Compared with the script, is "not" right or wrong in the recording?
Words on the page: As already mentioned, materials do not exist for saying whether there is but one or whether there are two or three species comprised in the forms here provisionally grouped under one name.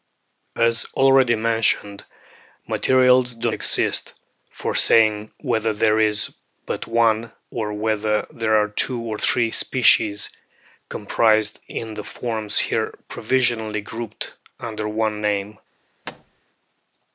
wrong